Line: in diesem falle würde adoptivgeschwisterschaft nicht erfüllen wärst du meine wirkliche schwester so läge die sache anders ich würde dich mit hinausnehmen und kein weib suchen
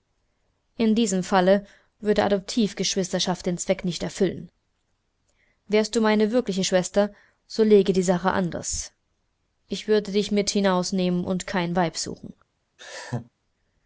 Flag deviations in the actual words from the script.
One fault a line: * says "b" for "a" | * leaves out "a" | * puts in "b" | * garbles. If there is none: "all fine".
* puts in "den zweck"